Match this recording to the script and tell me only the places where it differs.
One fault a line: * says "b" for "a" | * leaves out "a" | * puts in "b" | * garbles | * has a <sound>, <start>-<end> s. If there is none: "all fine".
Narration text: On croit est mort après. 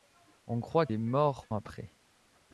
all fine